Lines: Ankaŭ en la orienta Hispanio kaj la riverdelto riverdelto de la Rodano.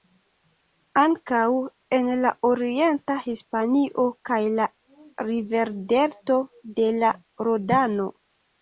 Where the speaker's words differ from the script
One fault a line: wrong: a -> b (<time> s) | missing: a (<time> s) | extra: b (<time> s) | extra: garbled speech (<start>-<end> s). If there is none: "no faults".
missing: riverdelto (6.4 s)